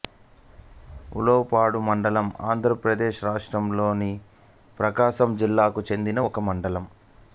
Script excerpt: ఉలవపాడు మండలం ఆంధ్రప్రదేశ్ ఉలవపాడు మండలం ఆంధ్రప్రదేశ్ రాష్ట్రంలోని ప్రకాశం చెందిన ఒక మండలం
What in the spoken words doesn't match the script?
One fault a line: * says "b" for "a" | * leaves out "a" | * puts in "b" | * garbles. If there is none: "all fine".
* leaves out "ఉలవపాడు మండలం ఆంధ్రప్రదేశ్"
* puts in "జిల్లాకు"